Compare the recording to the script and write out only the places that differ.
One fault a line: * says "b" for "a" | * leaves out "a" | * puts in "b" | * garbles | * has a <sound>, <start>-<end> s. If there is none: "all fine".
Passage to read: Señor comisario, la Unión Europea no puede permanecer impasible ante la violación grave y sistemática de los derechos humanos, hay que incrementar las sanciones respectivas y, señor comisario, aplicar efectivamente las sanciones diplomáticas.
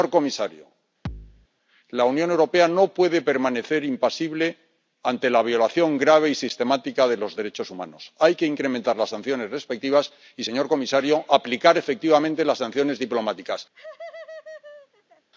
* has a thud, 1.1-1.5 s
* has a laugh, 13.7-15.3 s